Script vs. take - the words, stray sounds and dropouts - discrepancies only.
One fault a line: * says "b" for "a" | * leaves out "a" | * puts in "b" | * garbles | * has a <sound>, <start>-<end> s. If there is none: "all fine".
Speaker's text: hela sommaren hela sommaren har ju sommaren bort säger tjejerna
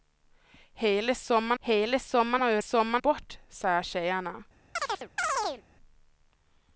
* has a chirp, 4.8-5.6 s